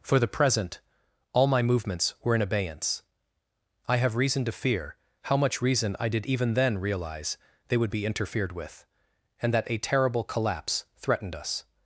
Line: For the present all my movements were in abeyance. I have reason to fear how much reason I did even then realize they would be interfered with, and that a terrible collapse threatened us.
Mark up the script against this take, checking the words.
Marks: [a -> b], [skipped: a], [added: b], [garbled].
For the present all my movements were in abeyance. I have reason to fear how much reason I did even then realize they would be interfered with, and that a terrible collapse threatened us.